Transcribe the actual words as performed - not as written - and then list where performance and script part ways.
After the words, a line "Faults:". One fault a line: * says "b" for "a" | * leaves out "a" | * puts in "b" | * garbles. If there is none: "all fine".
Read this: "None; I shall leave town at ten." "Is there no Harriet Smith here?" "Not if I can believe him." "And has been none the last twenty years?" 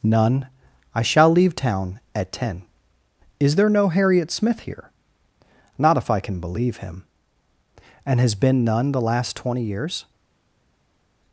"None; I shall leave town at ten." "Is there no Harriet Smith here?" "Not if I can believe him." "And has been none the last twenty years?"
Faults:
all fine